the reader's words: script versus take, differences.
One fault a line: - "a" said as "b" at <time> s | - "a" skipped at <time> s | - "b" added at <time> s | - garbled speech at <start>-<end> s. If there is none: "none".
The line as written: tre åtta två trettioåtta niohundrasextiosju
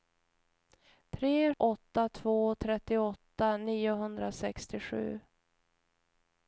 none